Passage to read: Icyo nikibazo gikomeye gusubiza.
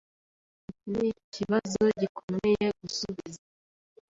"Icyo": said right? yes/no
no